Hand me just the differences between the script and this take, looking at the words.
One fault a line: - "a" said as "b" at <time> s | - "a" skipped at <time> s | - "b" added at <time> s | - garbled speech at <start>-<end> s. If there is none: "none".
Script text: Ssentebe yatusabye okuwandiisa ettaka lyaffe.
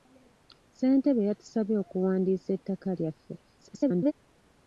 - garbled speech at 3.4-4.1 s